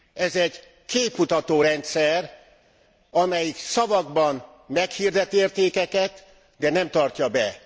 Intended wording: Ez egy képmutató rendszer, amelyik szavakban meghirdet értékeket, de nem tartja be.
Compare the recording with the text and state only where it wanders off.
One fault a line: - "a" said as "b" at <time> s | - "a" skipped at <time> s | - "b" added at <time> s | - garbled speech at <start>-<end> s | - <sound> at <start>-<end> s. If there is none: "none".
none